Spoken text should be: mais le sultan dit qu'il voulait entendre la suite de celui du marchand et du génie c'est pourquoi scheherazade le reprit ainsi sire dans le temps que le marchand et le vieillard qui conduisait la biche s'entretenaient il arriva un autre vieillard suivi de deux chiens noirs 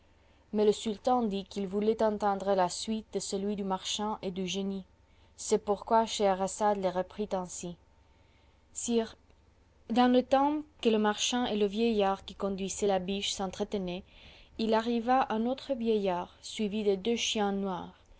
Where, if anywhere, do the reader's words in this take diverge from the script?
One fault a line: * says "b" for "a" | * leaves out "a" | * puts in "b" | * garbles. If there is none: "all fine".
all fine